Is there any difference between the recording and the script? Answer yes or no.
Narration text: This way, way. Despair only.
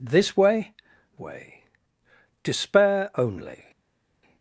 no